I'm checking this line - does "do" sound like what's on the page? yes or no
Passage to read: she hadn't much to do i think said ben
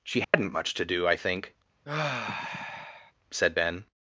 yes